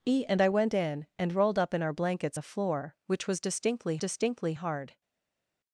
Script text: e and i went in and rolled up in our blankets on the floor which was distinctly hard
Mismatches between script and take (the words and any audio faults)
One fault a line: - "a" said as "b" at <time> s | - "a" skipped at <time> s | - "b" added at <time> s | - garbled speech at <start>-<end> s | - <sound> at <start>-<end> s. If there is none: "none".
- "on" skipped at 2.4 s
- "distinctly" added at 4.0 s